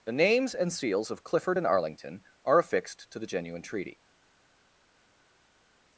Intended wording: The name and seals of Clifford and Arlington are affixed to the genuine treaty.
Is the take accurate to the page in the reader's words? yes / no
no